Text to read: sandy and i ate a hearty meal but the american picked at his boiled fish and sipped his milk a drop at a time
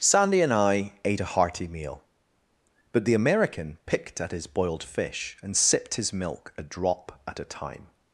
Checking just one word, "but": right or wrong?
right